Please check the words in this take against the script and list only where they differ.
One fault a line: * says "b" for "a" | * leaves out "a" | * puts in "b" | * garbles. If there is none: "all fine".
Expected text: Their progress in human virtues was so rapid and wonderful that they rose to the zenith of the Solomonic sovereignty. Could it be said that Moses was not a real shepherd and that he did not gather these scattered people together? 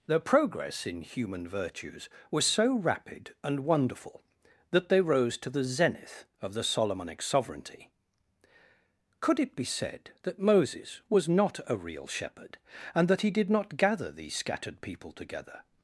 all fine